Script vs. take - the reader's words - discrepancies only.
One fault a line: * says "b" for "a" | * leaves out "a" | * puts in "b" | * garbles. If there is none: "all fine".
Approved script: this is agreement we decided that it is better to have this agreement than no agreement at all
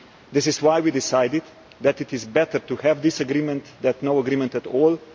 * says "why" for "agreement"